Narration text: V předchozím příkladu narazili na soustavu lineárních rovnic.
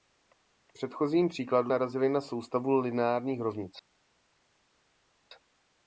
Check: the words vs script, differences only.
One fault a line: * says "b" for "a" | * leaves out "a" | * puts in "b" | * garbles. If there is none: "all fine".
all fine